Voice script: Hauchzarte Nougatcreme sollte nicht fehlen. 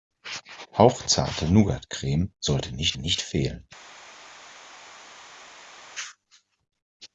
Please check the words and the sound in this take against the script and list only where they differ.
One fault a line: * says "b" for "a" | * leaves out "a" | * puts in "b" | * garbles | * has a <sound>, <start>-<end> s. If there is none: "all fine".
* puts in "nicht"